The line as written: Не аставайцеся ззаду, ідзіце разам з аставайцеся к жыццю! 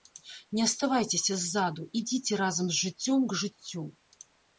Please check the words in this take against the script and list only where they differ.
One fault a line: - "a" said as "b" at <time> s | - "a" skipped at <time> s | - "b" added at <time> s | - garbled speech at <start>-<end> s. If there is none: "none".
- "аставайцеся" said as "жыццём" at 2.9 s